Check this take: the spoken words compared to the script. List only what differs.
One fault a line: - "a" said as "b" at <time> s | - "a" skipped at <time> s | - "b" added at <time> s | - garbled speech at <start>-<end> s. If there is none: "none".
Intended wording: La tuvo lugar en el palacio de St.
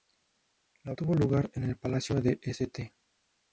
none